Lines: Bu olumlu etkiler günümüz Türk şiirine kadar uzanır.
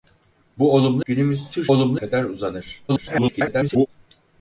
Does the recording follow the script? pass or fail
fail